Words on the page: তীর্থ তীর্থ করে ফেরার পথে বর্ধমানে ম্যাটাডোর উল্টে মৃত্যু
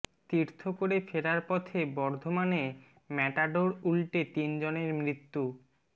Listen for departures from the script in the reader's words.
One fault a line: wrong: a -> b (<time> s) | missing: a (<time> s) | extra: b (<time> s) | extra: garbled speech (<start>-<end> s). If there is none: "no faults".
missing: তীর্থ (0.6 s)
extra: তিনজনের (4.3 s)